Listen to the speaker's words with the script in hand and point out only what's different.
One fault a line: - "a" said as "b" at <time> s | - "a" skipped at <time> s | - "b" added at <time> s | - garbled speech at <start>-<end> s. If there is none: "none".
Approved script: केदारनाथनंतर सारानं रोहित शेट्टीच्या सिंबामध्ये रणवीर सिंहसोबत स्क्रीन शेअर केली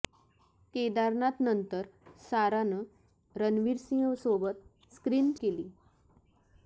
- "रोहित शेट्टीच्या सिंबामध्ये" skipped at 2.8 s
- "शेअर" skipped at 5.3 s